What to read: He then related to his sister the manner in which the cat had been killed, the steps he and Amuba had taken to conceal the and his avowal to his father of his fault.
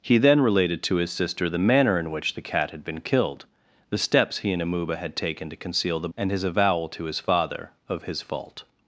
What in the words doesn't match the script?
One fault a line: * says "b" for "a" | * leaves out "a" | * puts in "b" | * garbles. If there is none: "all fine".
all fine